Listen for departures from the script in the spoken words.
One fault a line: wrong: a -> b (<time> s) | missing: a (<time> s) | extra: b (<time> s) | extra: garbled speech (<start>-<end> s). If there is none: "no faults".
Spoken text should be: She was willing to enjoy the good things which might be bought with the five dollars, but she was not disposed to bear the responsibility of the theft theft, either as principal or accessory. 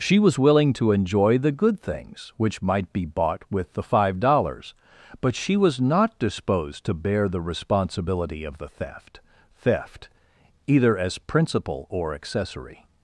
no faults